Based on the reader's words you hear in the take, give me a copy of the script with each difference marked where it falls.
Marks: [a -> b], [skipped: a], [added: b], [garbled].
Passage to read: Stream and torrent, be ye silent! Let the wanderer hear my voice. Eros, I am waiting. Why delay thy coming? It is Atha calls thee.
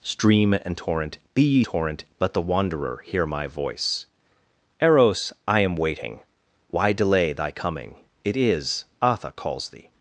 Stream and torrent, be ye [silent! -> torrent] Let the wanderer hear my voice. Eros, I am waiting. Why delay thy coming? It is Atha calls thee.